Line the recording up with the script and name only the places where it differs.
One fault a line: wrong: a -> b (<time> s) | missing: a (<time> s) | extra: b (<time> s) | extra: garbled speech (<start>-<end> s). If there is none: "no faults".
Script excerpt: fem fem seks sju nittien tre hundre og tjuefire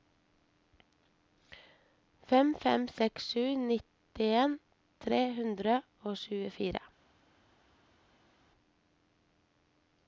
no faults